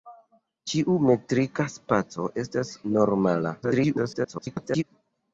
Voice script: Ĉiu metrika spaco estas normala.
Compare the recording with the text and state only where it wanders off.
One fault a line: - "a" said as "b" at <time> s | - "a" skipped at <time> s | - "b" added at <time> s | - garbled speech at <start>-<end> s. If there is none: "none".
- garbled speech at 3.6-4.8 s